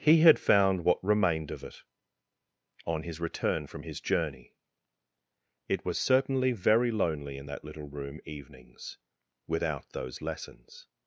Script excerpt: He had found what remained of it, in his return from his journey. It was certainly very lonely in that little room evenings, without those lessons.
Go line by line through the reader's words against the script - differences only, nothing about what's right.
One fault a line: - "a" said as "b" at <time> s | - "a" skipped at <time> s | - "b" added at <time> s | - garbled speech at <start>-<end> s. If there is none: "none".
- "in" said as "on" at 2.9 s